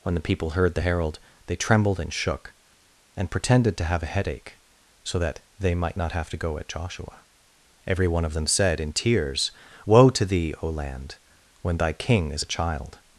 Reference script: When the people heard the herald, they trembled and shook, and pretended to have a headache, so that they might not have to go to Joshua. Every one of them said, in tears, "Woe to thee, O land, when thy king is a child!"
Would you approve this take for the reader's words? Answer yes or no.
no